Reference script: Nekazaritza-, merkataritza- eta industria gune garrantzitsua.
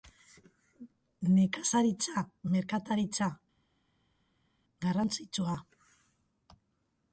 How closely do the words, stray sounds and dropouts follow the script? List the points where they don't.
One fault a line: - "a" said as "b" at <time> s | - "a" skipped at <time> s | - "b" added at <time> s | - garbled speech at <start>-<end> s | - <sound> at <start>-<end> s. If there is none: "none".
- "eta industria gune" skipped at 3.3 s